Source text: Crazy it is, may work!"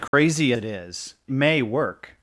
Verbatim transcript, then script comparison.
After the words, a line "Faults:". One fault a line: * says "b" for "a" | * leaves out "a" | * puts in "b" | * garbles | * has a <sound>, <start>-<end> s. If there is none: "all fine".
Crazy it is, may work!"
Faults:
* has a dropout, 0.1-0.1 s